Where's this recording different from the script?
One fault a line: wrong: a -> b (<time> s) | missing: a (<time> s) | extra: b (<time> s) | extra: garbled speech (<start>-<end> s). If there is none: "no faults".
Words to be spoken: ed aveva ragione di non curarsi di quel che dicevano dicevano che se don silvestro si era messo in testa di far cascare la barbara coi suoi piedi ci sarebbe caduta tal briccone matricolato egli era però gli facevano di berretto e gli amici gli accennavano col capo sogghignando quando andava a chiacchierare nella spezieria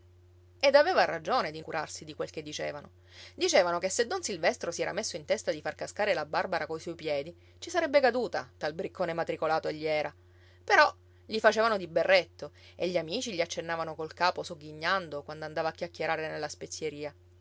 missing: non (1.6 s)